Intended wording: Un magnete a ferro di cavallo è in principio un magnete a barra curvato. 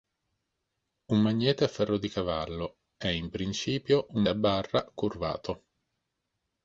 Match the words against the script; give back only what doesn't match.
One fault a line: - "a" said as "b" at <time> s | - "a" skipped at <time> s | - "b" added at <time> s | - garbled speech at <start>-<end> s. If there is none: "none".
- "magnete" skipped at 4.2 s